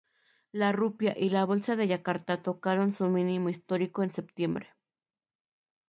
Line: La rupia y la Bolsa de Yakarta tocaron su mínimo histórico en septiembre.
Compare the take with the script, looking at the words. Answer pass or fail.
pass